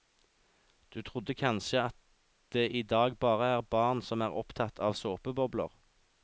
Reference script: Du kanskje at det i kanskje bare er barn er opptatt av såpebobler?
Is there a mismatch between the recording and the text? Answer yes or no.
yes